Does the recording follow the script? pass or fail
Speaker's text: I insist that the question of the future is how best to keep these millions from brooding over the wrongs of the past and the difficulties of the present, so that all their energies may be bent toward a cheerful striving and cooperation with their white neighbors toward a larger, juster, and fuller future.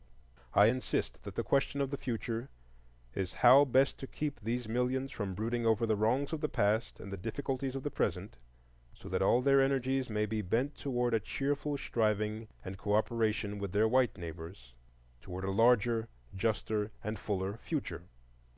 pass